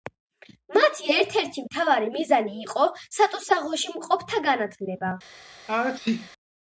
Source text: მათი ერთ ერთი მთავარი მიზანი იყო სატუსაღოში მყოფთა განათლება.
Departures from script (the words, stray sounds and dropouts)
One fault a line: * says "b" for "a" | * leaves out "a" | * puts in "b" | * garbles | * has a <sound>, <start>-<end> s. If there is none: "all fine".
* has a sneeze, 5.7-6.3 s